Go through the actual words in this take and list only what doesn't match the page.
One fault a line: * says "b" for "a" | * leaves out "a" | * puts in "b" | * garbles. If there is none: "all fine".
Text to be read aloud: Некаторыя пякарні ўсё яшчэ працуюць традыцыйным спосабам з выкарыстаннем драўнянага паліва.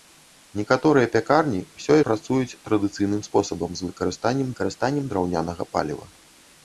* leaves out "яшчэ"
* puts in "выкарыстаннем"